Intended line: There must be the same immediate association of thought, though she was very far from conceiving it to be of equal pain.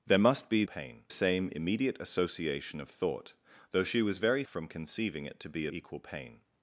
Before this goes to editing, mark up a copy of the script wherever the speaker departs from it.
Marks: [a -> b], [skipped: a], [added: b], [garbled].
There must be [the -> pain] same immediate association of thought, though she was very [skipped: far] from conceiving it to be [skipped: of] equal pain.